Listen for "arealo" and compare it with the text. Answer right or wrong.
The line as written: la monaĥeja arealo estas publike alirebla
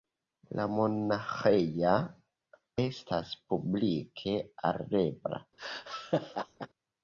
wrong